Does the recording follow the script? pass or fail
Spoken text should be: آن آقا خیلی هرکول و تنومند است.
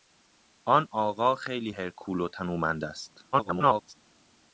fail